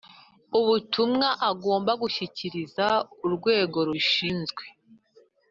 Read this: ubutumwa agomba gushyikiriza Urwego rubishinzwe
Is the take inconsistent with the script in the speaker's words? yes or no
no